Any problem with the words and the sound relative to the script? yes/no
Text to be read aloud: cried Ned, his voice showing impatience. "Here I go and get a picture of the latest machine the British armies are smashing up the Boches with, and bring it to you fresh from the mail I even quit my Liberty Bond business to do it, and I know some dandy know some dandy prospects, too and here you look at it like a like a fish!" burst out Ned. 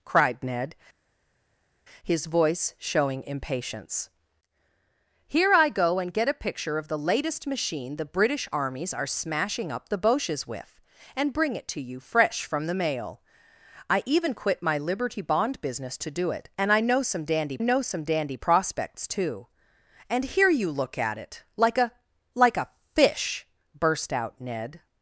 no